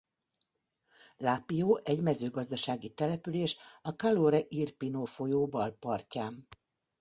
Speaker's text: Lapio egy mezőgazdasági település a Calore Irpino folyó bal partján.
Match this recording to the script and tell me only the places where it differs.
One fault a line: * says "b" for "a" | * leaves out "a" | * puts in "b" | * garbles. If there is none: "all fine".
all fine